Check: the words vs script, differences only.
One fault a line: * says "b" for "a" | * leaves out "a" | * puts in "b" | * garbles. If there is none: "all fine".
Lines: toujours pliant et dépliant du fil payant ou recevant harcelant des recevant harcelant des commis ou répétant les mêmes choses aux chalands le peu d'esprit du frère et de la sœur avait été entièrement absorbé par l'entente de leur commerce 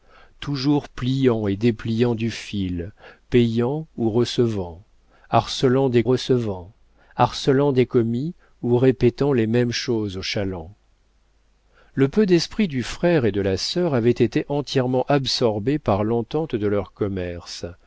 all fine